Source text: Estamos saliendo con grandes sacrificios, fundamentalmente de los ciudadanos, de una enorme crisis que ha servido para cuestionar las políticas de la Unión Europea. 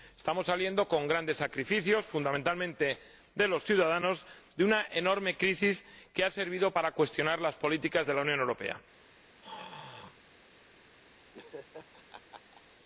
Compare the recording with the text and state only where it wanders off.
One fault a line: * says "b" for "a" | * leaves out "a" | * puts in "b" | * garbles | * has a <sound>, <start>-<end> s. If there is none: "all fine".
* has a throat clearing, 9.4-10.2 s
* has a laugh, 11.3-12.6 s